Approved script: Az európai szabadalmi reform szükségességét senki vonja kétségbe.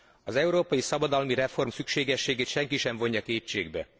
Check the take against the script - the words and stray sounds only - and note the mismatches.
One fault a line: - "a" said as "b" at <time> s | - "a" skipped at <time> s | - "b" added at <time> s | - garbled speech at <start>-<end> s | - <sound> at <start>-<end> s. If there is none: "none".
- "sem" added at 2.8 s